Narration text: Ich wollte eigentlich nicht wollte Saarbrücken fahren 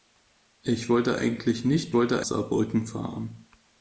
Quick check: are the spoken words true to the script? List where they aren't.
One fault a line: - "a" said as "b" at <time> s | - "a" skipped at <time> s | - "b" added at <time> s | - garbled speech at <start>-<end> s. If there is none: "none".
none